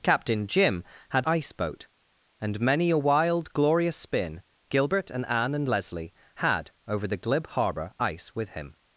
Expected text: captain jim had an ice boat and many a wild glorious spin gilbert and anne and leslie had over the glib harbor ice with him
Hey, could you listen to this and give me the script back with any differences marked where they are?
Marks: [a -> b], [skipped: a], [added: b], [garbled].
captain jim had [skipped: an] ice boat and many a wild glorious spin gilbert and anne and leslie had over the glib harbor ice with him